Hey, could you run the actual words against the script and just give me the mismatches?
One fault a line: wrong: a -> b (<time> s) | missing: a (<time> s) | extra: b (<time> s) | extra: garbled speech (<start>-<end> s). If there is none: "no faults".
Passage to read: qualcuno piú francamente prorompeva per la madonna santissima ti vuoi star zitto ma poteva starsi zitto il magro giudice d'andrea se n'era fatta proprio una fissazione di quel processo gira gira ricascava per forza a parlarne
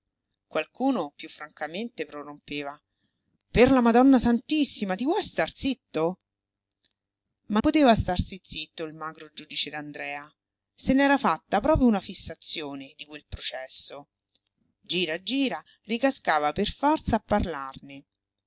no faults